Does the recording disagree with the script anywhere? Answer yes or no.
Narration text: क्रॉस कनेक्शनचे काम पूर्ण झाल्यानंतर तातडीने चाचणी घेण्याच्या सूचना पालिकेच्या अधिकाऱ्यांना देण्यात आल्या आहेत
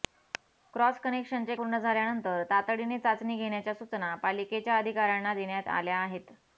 yes